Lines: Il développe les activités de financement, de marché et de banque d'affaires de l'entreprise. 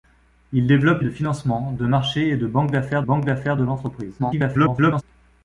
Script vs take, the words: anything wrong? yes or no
yes